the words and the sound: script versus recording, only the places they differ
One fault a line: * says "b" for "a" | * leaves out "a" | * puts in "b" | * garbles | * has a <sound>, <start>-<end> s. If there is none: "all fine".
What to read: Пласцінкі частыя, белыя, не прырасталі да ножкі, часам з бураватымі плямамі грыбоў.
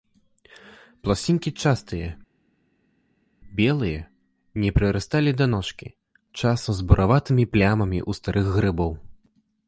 * puts in "ў старых"